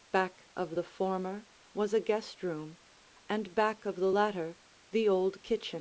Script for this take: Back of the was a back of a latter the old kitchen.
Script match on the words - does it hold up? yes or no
no